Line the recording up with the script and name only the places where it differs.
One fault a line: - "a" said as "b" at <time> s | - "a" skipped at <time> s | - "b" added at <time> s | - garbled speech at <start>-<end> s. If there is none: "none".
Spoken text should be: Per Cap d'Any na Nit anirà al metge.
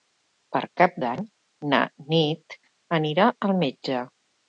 none